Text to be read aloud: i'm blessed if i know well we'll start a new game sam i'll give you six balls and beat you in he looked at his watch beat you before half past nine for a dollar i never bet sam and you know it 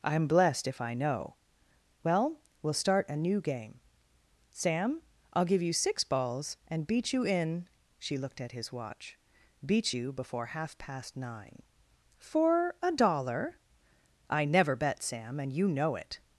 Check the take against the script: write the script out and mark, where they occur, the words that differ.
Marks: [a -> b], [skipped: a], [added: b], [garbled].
i'm blessed if i know well we'll start a new game sam i'll give you six balls and beat you in [he -> she] looked at his watch beat you before half past nine for a dollar i never bet sam and you know it